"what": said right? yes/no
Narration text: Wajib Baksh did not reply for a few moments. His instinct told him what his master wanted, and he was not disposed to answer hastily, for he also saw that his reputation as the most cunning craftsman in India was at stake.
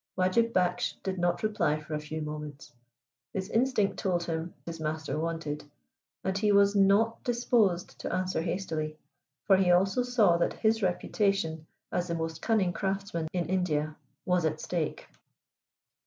no